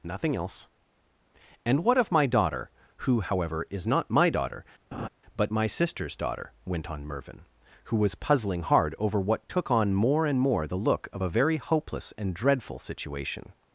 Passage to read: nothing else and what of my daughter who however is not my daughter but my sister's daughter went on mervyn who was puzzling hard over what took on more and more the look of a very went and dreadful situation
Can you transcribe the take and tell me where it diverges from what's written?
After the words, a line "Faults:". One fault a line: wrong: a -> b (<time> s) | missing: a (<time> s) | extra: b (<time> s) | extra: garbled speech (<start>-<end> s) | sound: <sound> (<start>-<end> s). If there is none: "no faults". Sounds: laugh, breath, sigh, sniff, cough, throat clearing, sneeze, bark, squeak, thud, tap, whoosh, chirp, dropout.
nothing else and what of my daughter who however is not my daughter but my sister's daughter went on mervyn who was puzzling hard over what took on more and more the look of a very hopeless and dreadful situation
Faults:
sound: laugh (4.9-5.1 s)
wrong: went -> hopeless (11.6 s)